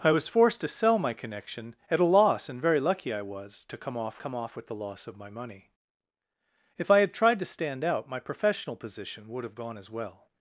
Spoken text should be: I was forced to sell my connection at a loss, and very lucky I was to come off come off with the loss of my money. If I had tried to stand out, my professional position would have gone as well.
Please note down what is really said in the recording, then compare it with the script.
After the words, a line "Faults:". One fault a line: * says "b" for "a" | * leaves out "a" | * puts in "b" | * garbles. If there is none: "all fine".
I was forced to sell my connection at a loss, and very lucky I was to come off come off with the loss of my money. If I had tried to stand out, my professional position would have gone as well.
Faults:
all fine